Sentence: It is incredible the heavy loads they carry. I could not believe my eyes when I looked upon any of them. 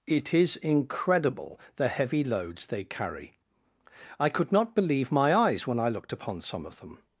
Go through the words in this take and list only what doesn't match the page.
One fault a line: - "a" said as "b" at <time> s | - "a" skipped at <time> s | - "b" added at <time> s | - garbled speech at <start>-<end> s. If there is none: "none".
- "any" said as "some" at 6.4 s